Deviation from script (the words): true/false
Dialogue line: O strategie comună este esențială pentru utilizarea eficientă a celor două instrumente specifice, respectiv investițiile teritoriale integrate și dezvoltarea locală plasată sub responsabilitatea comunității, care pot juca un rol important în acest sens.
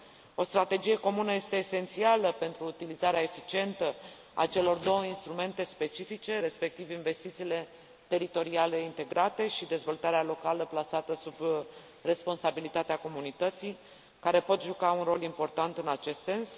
false